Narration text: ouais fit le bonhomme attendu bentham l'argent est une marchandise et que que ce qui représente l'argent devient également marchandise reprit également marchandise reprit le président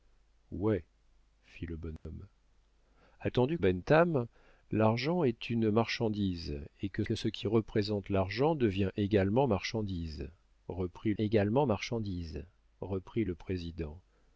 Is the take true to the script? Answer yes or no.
yes